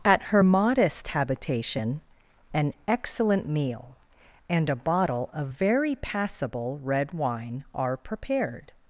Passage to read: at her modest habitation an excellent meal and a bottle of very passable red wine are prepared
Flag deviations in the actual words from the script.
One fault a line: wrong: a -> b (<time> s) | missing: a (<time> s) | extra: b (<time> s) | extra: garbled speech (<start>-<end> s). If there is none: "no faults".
no faults